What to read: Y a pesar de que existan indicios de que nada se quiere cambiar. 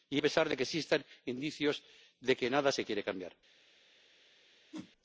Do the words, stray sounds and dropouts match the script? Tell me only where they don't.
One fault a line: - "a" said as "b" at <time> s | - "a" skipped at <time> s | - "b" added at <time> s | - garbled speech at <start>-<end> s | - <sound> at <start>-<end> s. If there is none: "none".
- whoosh at 4.7-4.9 s